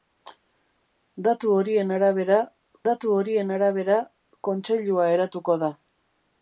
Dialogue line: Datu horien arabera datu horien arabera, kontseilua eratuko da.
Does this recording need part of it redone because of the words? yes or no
no